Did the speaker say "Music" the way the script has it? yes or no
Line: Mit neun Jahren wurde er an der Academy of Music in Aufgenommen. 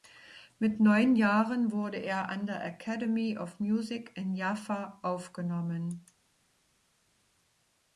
yes